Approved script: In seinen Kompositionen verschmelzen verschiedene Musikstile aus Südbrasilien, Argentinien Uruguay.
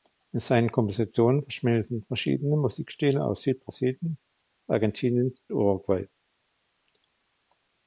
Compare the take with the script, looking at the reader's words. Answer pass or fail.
pass